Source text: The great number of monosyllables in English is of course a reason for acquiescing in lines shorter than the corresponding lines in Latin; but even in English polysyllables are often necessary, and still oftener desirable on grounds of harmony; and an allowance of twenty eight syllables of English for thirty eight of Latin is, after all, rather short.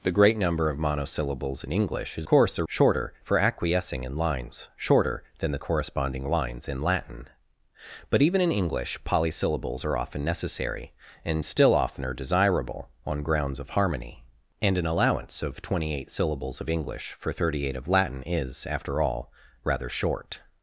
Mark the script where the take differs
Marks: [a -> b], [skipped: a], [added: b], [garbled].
The great number of monosyllables in English is [skipped: of] course a [reason -> shorter] for acquiescing in lines shorter than the corresponding lines in Latin; but even in English polysyllables are often necessary, and still oftener desirable on grounds of harmony; and an allowance of twenty eight syllables of English for thirty eight of Latin is, after all, rather short.